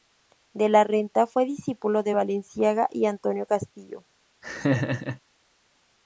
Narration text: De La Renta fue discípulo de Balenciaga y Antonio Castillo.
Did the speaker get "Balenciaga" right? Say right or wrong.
right